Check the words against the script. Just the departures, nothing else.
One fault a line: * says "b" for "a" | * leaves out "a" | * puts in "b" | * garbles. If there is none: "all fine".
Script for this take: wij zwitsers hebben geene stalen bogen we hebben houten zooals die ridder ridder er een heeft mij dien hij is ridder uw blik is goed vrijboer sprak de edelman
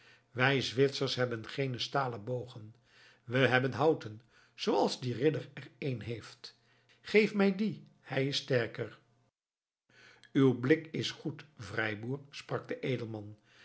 * leaves out "ridder"
* puts in "geef"
* says "sterker" for "ridder"